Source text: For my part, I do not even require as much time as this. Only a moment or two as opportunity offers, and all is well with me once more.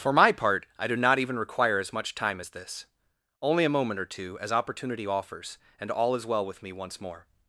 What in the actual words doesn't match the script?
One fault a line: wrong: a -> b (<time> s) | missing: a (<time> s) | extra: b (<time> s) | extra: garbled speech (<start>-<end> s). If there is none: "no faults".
no faults